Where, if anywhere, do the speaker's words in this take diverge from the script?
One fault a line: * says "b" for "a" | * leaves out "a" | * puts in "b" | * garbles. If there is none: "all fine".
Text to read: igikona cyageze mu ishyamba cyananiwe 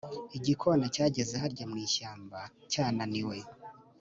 * puts in "harya"